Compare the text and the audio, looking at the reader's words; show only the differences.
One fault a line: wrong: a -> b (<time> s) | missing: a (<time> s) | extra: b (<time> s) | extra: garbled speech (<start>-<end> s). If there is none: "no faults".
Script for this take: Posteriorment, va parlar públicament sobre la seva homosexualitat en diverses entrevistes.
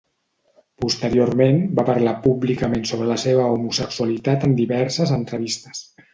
no faults